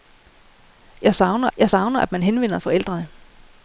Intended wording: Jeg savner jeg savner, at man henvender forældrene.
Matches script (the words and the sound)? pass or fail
pass